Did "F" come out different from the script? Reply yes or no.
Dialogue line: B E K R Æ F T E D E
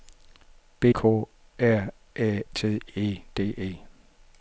yes